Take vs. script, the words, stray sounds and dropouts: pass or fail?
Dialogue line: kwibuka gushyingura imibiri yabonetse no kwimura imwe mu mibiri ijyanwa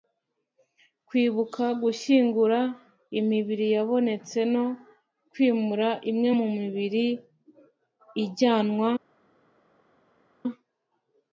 pass